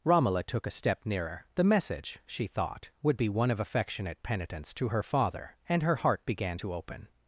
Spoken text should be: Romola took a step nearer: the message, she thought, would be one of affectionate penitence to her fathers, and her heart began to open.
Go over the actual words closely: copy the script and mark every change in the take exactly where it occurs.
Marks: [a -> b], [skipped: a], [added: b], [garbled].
Romola took a step nearer: the message, she thought, would be one of affectionate penitence to her [fathers, -> father] and her heart began to open.